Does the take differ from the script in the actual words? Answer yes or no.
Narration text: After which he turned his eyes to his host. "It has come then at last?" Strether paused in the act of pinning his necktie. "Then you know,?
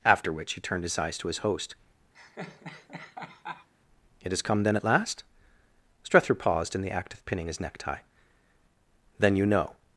no